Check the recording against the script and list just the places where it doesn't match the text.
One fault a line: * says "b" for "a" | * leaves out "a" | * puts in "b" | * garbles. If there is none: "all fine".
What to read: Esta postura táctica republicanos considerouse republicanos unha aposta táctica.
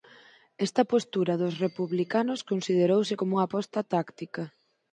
* says "dos" for "táctica"
* says "como" for "republicanos"